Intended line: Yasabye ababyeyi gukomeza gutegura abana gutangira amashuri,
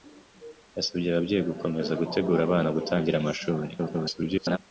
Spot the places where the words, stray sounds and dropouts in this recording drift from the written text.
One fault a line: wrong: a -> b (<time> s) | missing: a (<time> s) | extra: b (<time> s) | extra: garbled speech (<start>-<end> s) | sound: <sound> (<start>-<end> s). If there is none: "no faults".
extra: garbled speech (3.8-4.6 s)